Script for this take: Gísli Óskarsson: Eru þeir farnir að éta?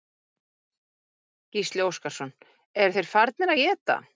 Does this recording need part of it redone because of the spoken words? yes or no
no